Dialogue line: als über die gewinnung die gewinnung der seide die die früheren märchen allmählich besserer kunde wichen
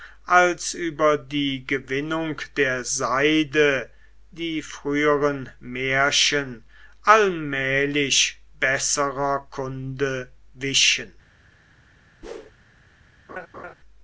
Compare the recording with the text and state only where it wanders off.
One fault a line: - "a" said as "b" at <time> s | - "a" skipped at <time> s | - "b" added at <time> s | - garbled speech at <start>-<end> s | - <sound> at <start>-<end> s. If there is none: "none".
- "die gewinnung" skipped at 2.4 s
- "die" skipped at 4.6 s
- whoosh at 12.2-12.5 s
- laugh at 13.3-13.7 s